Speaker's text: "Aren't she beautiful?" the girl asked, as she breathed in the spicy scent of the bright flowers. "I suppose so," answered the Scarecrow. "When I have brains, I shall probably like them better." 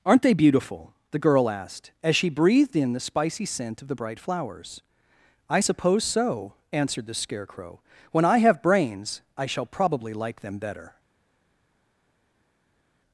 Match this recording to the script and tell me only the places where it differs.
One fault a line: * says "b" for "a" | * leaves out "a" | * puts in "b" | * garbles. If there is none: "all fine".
* says "they" for "she"